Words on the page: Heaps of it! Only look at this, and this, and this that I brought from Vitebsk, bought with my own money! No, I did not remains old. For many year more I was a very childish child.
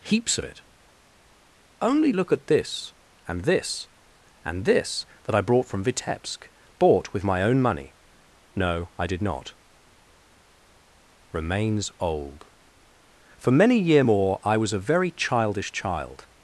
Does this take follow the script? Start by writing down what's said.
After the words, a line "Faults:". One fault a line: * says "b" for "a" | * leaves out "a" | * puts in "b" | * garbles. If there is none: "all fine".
Heaps of it! Only look at this, and this, and this that I brought from Vitebsk, bought with my own money! No, I did not remains old. For many year more I was a very childish child.
Faults:
all fine